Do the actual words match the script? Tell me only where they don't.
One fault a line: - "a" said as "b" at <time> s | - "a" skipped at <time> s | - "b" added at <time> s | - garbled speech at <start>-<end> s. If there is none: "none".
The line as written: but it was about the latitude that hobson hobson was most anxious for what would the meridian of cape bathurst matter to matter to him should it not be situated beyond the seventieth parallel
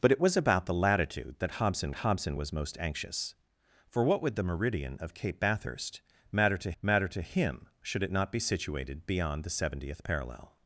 none